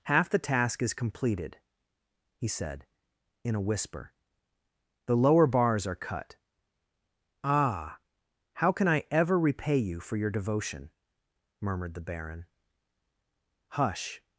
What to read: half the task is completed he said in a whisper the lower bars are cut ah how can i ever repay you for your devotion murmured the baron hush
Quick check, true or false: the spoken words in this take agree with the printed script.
true